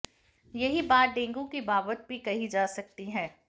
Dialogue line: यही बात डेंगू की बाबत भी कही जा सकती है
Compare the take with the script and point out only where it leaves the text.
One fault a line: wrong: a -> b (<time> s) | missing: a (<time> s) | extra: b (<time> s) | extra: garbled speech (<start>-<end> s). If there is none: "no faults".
no faults